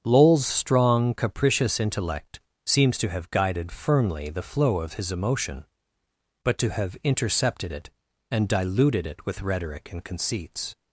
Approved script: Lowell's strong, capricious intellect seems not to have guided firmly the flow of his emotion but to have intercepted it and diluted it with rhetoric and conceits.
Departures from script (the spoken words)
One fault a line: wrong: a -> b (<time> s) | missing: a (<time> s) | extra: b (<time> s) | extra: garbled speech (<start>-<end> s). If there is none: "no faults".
missing: not (3.0 s)